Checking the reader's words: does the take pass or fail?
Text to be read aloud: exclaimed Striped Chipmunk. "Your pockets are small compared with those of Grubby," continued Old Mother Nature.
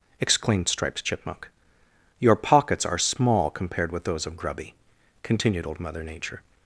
pass